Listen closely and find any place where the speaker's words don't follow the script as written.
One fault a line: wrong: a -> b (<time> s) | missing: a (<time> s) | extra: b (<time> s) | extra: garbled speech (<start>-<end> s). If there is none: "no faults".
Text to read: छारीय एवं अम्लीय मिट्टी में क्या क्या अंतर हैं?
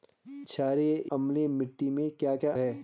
missing: एवं (0.9 s)
missing: अंतर (2.5 s)